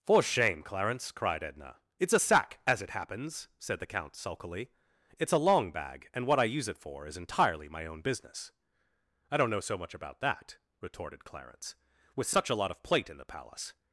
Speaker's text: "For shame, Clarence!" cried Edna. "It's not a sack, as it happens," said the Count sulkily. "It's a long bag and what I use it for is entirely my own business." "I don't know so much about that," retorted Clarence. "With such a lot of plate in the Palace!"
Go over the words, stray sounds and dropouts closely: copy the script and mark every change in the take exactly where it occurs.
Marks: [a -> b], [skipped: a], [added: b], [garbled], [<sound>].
"For shame, Clarence!" cried Edna. "It's [skipped: not] a sack, as it happens," said the Count sulkily. "It's a long bag and what I use it for is entirely my own business." "I don't know so much about that," retorted Clarence. "With such a lot of plate in the Palace!"